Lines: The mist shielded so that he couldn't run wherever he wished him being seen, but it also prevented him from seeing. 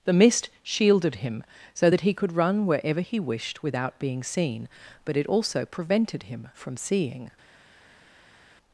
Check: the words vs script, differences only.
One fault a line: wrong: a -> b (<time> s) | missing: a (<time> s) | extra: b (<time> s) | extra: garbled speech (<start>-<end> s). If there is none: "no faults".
extra: him (1.2 s)
wrong: couldn't -> could (2.1 s)
wrong: him -> without (3.6 s)